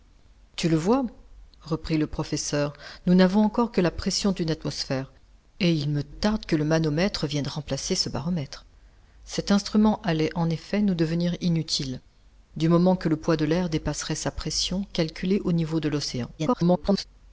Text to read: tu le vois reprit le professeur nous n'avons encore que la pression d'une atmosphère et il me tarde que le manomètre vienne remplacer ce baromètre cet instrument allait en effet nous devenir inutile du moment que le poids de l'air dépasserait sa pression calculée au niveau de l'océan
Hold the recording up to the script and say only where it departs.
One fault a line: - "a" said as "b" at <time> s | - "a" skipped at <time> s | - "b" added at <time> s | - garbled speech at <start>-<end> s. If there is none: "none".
- garbled speech at 16.4-17.0 s